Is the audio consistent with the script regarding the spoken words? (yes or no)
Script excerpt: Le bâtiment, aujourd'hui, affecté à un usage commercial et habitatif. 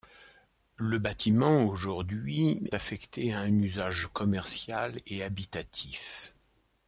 yes